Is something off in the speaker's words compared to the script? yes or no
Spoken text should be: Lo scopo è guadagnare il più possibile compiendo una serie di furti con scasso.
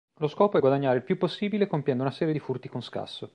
no